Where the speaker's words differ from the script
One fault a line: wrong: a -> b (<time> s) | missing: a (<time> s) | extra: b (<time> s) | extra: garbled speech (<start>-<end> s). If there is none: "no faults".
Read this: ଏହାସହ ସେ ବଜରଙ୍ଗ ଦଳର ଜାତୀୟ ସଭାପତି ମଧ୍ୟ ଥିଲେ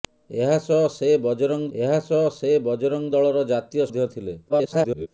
extra: ଏହାସହ ସେ ବଜରଙ୍ଗ (1.8 s)
missing: ସଭାପତି (3.9 s)
extra: garbled speech (4.5-5.1 s)